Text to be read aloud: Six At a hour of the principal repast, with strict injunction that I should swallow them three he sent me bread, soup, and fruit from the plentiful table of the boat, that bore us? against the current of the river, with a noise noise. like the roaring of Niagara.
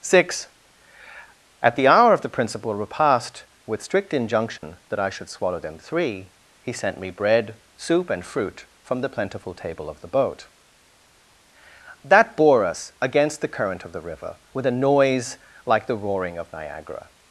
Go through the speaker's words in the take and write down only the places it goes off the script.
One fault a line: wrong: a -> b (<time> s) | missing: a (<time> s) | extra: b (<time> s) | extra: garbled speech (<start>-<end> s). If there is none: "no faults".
wrong: a -> the (1.8 s)
missing: noise (15.4 s)